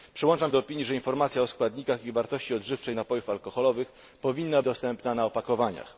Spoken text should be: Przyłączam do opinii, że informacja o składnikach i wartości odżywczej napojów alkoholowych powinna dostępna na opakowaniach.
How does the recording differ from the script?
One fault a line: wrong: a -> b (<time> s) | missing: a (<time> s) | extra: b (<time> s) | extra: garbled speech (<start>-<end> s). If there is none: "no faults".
no faults